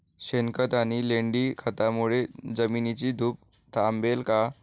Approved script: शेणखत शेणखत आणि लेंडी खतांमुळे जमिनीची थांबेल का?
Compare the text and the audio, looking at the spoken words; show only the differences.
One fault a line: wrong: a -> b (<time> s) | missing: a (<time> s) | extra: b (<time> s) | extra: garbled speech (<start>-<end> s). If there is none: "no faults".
missing: शेणखत (0.7 s)
extra: धूप (3.1 s)